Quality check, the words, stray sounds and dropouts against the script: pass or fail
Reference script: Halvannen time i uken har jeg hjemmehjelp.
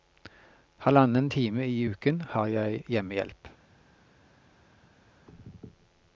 pass